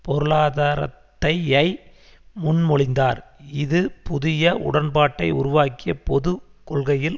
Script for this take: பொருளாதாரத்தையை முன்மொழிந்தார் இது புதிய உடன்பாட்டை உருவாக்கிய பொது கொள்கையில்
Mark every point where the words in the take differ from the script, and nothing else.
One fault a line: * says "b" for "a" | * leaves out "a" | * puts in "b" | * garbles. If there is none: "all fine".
all fine